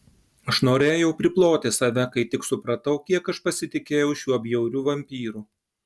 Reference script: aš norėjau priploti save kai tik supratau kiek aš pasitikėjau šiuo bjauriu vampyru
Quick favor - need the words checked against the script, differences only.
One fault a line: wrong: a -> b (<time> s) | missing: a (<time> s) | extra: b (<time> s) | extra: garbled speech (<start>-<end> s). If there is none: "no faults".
no faults